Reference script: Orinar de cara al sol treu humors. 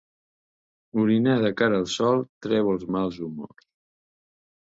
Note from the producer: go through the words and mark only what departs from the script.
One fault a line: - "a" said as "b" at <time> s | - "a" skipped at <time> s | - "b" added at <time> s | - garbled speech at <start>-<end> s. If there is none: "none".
- "els mals" added at 2.7 s